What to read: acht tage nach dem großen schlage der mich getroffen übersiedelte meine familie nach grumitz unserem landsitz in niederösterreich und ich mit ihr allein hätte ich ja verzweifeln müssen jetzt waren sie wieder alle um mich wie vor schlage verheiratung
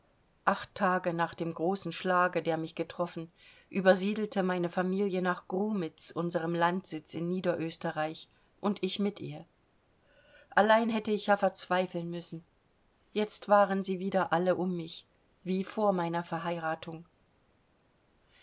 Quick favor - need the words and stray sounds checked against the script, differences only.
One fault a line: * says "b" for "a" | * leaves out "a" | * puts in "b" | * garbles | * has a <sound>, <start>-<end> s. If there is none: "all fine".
* says "meiner" for "schlage"